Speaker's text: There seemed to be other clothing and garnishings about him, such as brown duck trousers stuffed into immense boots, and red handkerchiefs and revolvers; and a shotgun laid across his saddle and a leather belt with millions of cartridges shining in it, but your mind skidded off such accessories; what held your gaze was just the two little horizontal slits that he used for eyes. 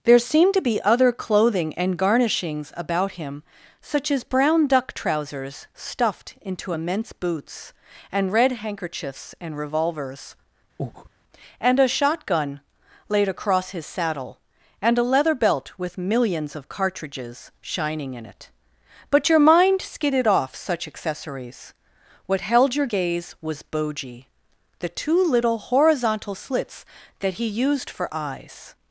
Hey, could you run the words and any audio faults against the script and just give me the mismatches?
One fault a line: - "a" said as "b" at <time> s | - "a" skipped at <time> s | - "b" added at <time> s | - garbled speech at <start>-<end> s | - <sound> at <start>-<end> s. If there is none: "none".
- breath at 10.8-11.1 s
- "just" said as "boji" at 23.6 s